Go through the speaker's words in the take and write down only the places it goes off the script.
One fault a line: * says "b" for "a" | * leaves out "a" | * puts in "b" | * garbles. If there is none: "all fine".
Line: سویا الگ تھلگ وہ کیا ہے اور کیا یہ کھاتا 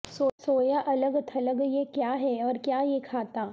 * says "یہ" for "وہ"